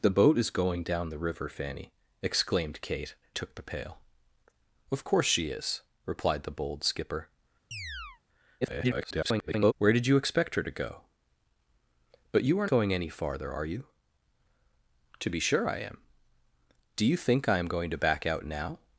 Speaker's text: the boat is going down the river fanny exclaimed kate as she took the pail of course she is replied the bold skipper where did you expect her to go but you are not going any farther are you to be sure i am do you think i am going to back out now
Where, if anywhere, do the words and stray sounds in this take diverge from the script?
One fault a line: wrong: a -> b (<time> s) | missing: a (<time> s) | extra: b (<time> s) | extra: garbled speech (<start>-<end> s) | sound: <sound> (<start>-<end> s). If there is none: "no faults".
missing: as she (3.1 s)
sound: chirp (7.7-8.2 s)
extra: garbled speech (8.6-9.7 s)
missing: not (12.7 s)